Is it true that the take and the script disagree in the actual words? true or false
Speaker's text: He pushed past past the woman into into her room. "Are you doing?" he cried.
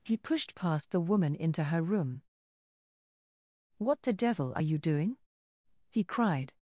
true